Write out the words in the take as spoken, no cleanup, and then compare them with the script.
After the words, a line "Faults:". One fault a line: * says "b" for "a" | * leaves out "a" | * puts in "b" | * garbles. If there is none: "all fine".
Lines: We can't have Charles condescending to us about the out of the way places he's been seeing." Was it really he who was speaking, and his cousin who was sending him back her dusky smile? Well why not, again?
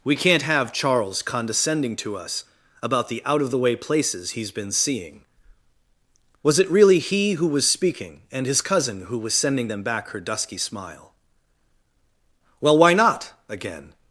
We can't have Charles condescending to us about the out of the way places he's been seeing." Was it really he who was speaking, and his cousin who was sending them back her dusky smile? Well why not, again?
Faults:
* says "them" for "him"